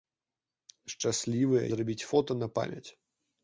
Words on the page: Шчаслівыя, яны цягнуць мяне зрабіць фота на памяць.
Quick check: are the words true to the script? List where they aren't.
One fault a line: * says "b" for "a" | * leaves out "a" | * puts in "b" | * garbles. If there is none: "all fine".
* leaves out "яны цягнуць мяне"